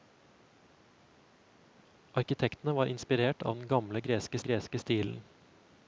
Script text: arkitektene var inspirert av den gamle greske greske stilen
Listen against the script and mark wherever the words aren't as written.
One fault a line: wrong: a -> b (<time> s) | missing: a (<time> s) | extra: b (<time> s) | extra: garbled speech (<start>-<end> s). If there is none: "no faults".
no faults